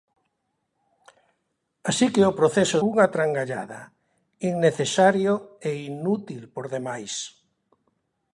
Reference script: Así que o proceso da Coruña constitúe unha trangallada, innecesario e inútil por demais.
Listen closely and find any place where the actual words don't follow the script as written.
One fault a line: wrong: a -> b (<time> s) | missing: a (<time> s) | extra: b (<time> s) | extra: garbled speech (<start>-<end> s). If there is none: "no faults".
missing: da Coruña constitúe (2.8 s)